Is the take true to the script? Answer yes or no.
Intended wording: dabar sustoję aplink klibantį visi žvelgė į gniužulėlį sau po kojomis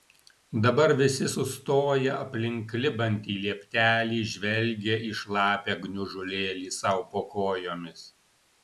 no